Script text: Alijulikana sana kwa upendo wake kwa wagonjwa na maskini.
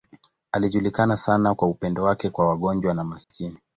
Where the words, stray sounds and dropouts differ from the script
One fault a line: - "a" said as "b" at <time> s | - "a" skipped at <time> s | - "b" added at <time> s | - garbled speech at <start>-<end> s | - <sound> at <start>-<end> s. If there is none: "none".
- dropout at 3.2-3.3 s